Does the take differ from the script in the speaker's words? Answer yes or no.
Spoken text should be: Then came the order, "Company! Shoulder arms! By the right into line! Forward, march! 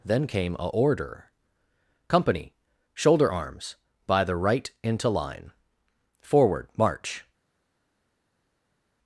yes